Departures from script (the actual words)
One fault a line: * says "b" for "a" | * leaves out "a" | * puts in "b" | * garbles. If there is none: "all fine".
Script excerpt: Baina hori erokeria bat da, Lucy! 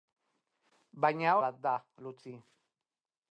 * leaves out "hori erokeria"